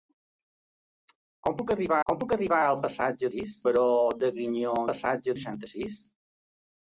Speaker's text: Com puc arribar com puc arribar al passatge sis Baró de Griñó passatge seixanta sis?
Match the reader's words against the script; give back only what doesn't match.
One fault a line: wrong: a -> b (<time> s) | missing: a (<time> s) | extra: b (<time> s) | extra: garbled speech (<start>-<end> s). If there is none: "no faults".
no faults